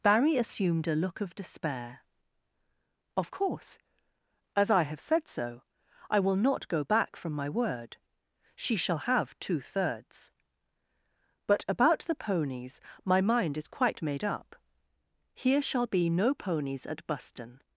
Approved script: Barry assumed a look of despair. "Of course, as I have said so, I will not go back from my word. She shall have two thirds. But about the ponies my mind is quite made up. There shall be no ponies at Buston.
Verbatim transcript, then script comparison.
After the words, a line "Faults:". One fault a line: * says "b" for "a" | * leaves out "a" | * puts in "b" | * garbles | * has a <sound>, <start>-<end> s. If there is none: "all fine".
Barry assumed a look of despair. "Of course, as I have said so, I will not go back from my word. She shall have two thirds. But about the ponies my mind is quite made up. Here shall be no ponies at Buston.
Faults:
* says "Here" for "There"